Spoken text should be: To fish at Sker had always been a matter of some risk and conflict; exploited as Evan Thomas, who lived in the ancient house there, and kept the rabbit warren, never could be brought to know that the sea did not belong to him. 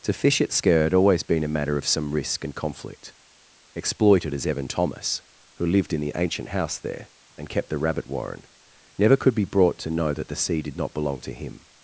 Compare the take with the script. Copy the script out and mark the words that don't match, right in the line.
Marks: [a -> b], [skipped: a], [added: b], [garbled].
To fish at Sker had always been a matter of some risk and conflict; exploited as Evan Thomas, who lived in the ancient house there, and kept the rabbit warren, never could be brought to know that the sea did not belong to him.